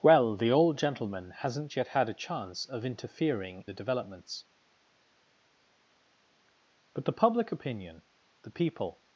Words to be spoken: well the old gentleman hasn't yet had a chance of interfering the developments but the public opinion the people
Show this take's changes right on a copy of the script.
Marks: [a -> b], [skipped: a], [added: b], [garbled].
well the old gentleman hasn't yet had a chance of interfering the developments but the public opinion the people